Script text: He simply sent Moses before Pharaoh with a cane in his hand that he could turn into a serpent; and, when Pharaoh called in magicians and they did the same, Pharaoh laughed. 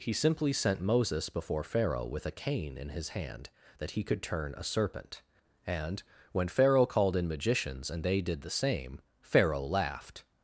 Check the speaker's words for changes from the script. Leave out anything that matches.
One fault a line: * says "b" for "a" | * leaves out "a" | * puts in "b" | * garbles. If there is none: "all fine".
* leaves out "into"